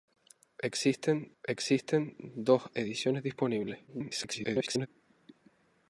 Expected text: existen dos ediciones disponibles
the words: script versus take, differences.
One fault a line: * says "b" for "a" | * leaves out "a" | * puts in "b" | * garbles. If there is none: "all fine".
* puts in "existen"
* garbles